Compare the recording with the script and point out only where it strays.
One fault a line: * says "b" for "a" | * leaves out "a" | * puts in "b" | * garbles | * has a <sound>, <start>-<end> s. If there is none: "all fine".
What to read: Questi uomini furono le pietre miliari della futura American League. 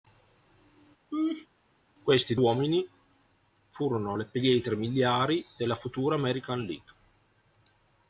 * has a laugh, 1.1-1.5 s